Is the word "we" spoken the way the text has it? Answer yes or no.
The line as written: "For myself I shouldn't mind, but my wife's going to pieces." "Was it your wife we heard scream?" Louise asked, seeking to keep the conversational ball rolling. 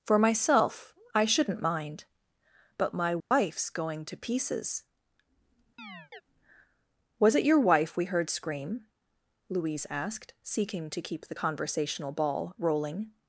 yes